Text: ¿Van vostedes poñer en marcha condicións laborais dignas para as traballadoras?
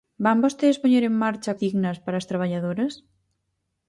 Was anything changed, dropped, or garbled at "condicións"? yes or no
yes